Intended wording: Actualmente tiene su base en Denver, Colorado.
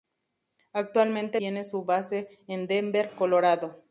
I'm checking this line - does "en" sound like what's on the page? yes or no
yes